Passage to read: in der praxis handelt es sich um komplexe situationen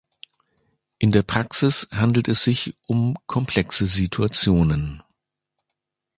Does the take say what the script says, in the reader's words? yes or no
yes